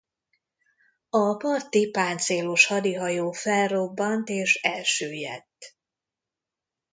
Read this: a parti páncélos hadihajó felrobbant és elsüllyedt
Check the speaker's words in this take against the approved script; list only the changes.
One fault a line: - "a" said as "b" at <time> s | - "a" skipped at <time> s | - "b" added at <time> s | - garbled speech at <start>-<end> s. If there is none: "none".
none